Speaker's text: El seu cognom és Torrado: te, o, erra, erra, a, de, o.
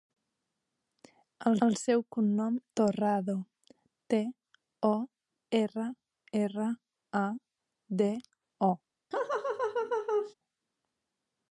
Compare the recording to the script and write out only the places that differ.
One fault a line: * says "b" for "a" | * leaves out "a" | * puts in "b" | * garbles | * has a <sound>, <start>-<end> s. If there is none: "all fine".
* puts in "el"
* leaves out "és"
* has a laugh, 9.1-10.3 s